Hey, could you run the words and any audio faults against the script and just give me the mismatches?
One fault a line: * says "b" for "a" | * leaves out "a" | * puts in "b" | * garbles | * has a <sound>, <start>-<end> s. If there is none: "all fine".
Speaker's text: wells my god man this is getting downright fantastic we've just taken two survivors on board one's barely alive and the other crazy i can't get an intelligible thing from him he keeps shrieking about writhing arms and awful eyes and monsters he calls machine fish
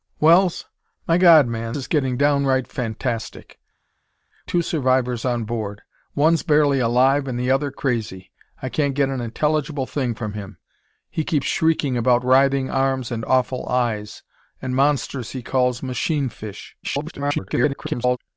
* leaves out "this"
* leaves out "we've just taken"
* garbles